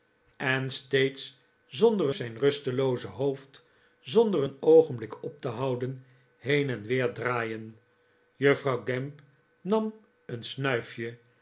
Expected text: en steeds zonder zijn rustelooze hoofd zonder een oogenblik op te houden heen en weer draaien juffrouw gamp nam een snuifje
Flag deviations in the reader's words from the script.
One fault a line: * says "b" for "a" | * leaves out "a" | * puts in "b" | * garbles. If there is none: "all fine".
all fine